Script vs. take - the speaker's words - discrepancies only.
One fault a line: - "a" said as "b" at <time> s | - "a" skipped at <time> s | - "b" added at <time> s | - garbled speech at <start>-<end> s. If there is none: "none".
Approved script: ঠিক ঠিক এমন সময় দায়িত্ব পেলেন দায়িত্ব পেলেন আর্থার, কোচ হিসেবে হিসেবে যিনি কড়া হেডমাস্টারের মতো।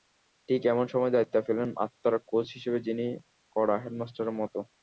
- "ঠিক" skipped at 0.6 s
- "দায়িত্ব পেলেন" skipped at 1.7 s
- "হিসেবে" skipped at 2.8 s